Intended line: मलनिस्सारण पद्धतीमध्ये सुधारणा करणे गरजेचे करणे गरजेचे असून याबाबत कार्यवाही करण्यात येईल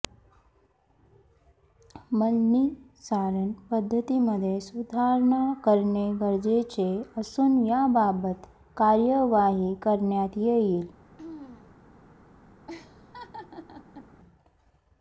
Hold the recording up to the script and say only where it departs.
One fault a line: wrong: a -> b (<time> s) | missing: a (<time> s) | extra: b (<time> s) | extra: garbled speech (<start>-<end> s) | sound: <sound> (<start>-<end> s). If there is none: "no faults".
missing: करणे गरजेचे (6.9 s)
sound: throat clearing (11.2-11.7 s)
sound: laugh (12.7-14.1 s)